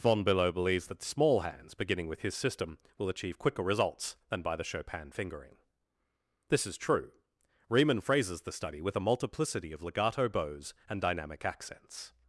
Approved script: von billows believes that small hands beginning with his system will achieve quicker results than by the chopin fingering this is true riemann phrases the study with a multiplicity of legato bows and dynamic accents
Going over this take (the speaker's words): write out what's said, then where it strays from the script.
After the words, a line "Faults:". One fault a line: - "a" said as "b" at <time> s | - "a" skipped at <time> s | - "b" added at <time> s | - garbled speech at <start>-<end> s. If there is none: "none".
von billow believes that small hands beginning with his system will achieve quicker results than by the chopin fingering this is true riemann phrases the study with a multiplicity of legato bows and dynamic accents
Faults:
- "billows" said as "billow" at 0.2 s